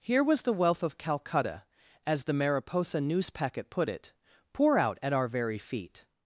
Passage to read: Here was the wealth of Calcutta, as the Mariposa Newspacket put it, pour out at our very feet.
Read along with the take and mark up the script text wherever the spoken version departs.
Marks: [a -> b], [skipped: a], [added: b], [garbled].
Here was the wealth of Calcutta, as the Mariposa Newspacket put it, pour out at our very feet.